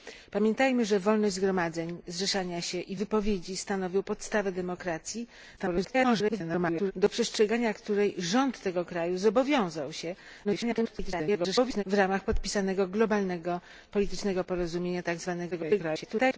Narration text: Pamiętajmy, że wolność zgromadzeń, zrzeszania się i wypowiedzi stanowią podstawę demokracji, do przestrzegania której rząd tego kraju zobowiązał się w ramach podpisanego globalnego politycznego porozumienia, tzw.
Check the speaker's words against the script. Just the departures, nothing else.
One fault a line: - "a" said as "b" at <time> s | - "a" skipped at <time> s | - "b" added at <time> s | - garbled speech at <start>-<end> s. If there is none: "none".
- garbled speech at 5.6-6.9 s
- garbled speech at 10.4-11.8 s
- garbled speech at 15.5-16.4 s